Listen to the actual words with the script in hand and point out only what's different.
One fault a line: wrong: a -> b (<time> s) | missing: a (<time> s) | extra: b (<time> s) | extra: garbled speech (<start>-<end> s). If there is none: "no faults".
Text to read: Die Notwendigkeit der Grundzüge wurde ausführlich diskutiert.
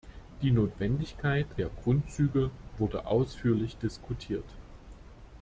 no faults